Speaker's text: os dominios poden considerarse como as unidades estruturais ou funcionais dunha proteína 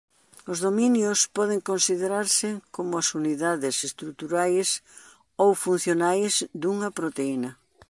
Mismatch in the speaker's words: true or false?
false